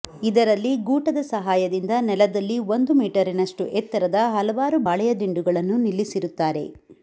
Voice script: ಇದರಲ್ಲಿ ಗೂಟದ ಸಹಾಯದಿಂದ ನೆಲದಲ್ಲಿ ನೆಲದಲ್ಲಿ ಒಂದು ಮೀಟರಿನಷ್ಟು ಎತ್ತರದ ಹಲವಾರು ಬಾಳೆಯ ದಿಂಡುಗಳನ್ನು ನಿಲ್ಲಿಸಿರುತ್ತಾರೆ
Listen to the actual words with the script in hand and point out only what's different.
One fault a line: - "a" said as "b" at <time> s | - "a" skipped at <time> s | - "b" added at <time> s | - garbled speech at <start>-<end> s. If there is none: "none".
- "ನೆಲದಲ್ಲಿ" skipped at 2.6 s